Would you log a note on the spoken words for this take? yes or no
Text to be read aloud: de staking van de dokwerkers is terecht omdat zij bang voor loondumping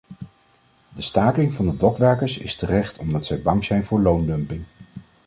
yes